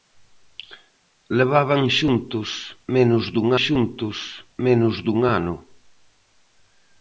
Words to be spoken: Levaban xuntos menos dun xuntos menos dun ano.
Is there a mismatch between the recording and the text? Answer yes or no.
no